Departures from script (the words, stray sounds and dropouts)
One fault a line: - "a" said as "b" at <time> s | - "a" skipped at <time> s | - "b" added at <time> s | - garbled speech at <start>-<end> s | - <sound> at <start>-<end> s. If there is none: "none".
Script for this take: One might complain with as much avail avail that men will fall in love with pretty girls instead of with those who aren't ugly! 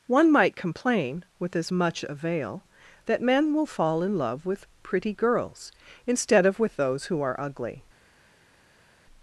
- "avail" skipped at 2.7 s
- "aren't" said as "are" at 7.2 s